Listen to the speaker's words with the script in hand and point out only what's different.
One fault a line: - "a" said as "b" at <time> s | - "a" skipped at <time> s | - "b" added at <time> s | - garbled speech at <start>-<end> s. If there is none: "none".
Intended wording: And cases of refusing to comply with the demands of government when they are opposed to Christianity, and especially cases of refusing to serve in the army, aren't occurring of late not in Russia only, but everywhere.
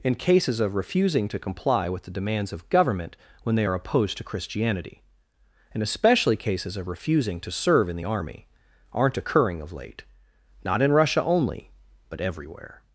none